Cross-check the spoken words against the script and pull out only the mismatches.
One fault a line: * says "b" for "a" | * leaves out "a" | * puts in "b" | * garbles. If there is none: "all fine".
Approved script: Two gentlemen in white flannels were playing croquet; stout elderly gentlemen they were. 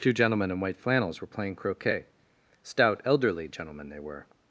all fine